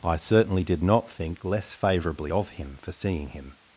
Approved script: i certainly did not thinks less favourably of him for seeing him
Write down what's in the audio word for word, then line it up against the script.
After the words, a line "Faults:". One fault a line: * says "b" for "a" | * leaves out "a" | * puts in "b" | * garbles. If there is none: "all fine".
i certainly did not think less favourably of him for seeing him
Faults:
* says "think" for "thinks"